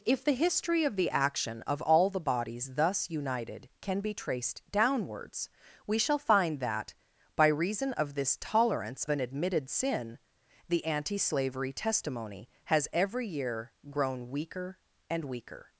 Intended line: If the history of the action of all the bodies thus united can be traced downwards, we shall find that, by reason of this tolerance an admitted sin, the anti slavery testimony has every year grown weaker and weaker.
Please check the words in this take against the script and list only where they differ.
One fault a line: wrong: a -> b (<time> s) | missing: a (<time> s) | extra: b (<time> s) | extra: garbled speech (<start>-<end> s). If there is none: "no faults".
no faults